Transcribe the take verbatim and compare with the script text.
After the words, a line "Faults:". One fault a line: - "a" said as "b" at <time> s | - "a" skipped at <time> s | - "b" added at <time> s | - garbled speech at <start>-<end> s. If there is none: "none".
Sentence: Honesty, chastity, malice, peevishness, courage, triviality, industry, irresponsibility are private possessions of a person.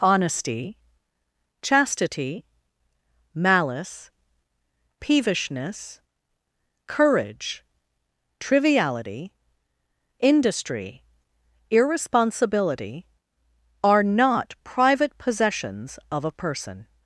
Honesty, chastity, malice, peevishness, courage, triviality, industry, irresponsibility are not private possessions of a person.
Faults:
- "not" added at 14.0 s